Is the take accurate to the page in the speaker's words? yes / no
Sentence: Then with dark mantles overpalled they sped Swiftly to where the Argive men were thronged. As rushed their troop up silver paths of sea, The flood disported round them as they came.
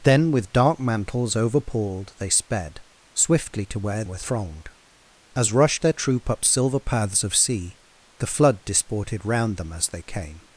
no